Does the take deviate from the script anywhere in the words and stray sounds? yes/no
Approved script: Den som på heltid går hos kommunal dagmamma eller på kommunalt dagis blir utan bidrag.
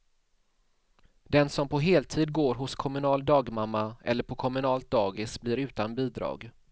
no